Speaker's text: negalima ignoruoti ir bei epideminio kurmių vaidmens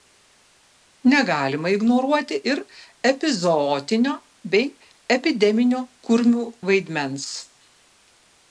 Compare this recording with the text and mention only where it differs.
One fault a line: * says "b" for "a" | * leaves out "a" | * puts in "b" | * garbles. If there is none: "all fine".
* puts in "epizootinio"